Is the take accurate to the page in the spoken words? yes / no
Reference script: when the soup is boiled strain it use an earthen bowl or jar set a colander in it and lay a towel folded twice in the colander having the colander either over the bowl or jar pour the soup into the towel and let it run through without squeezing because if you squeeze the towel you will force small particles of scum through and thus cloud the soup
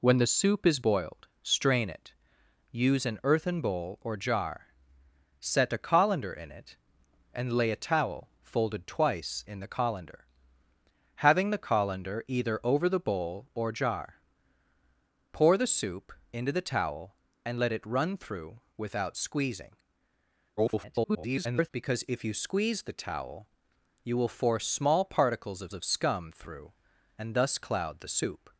no